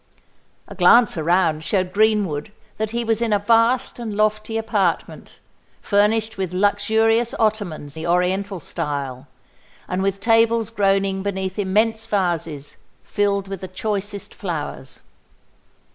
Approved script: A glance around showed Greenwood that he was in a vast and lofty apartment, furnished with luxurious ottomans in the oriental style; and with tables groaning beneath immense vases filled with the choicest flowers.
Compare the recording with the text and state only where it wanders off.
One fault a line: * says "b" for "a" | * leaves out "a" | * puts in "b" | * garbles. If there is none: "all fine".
* leaves out "in"